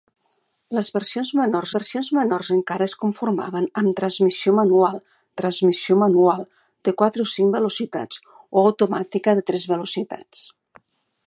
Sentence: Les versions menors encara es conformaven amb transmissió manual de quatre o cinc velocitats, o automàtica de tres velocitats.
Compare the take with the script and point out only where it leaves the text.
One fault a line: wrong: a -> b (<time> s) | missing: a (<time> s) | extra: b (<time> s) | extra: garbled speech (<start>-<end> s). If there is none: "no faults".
extra: versions menors (1.7 s)
extra: transmissió manual (5.4 s)